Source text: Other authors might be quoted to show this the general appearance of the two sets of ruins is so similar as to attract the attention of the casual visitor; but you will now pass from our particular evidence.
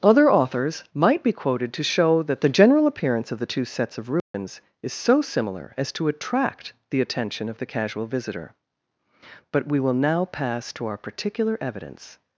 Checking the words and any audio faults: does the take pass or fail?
fail